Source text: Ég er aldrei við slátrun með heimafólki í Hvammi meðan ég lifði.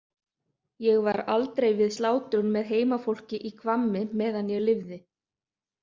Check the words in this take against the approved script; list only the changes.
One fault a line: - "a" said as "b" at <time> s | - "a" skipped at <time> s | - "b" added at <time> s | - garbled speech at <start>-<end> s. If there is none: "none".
- "er" said as "var" at 1.1 s